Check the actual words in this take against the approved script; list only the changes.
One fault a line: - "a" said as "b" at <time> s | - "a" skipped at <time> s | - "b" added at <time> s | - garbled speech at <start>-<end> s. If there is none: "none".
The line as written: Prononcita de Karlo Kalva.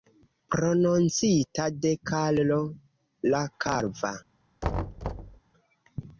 - "la" added at 3.4 s